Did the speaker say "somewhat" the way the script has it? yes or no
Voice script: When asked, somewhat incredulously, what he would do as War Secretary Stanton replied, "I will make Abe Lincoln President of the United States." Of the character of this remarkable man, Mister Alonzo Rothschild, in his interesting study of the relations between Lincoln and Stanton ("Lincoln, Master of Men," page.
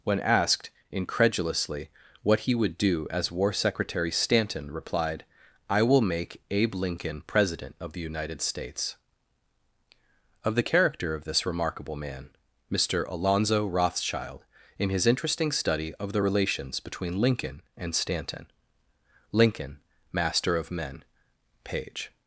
no